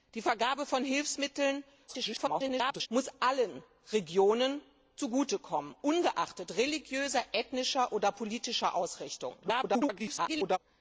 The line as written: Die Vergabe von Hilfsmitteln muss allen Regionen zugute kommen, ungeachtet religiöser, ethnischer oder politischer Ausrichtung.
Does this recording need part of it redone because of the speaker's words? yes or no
yes